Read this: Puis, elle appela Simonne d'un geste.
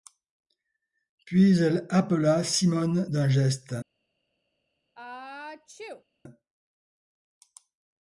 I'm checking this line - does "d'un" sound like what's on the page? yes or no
yes